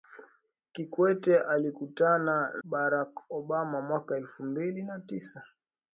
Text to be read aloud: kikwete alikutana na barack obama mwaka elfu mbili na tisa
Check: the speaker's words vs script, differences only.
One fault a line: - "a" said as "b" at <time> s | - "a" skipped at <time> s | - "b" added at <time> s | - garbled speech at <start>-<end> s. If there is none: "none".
- "na" skipped at 2.5 s